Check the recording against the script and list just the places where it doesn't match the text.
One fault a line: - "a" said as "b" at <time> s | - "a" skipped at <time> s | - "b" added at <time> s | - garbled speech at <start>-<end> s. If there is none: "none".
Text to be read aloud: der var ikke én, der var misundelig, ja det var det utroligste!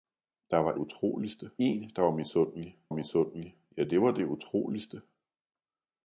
- "ikke" said as "utroligste" at 0.7 s
- "misundelig" added at 2.9 s